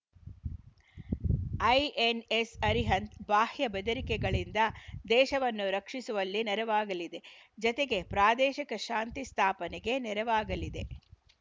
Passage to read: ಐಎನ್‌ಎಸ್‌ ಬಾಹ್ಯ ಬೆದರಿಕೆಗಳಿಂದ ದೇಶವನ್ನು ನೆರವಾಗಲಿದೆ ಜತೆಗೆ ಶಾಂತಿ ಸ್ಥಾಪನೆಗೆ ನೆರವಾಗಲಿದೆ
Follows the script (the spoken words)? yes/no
no